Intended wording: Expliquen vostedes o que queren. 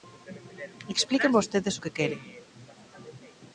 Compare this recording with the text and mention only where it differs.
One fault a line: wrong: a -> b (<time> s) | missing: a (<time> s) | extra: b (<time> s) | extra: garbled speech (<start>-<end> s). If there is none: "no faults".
no faults